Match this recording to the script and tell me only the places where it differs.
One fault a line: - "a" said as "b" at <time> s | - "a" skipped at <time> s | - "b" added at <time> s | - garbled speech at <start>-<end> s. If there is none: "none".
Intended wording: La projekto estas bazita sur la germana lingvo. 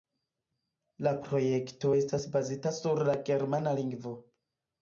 none